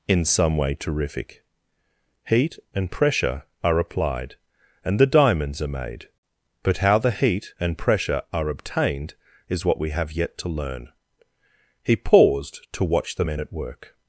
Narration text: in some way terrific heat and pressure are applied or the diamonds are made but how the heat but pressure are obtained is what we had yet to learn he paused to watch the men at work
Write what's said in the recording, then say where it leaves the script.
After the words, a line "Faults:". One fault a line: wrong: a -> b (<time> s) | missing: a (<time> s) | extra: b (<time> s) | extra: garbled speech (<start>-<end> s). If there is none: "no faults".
in some way terrific heat and pressure are applied and the diamonds are made but how the heat and pressure are obtained is what we have yet to learn he paused to watch the men at work
Faults:
wrong: or -> and (4.8 s)
wrong: but -> and (7.6 s)
wrong: had -> have (9.9 s)